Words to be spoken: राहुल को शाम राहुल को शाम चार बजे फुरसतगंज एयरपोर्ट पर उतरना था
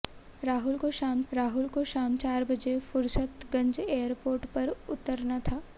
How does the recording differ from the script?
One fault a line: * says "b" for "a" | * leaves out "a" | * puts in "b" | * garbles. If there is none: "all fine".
all fine